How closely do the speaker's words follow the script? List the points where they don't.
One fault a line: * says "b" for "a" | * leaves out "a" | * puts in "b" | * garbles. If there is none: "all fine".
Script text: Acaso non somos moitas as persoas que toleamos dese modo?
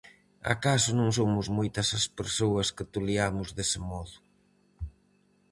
all fine